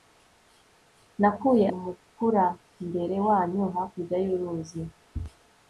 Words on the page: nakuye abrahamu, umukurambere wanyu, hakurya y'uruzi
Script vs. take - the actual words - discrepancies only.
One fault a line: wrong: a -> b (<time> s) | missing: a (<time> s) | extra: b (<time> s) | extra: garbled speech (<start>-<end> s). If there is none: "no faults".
missing: abrahamu (1.6 s)